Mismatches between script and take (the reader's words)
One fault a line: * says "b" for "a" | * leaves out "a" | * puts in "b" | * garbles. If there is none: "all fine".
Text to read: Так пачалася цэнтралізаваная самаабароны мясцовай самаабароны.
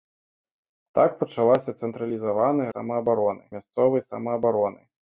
all fine